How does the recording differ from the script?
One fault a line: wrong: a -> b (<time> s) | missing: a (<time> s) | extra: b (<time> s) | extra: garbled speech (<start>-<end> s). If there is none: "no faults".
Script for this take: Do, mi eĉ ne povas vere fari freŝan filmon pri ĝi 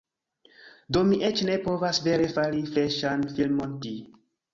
missing: pri (3.8 s)